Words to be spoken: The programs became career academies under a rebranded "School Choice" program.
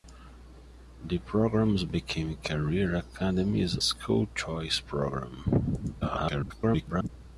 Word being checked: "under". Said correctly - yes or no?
no